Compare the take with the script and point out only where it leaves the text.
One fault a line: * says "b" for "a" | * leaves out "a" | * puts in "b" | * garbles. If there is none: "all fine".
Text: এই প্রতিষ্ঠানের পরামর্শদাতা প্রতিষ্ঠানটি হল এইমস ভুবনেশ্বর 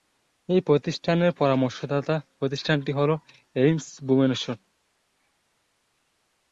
all fine